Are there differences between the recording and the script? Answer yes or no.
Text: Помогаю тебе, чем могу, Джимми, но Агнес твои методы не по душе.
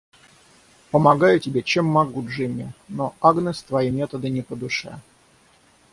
no